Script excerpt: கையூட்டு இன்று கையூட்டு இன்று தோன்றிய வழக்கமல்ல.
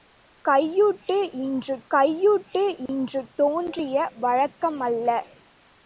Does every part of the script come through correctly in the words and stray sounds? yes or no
no